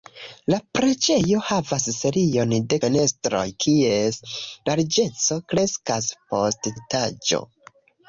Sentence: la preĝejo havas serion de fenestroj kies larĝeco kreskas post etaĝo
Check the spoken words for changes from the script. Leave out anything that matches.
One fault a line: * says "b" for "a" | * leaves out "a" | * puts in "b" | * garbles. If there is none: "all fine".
all fine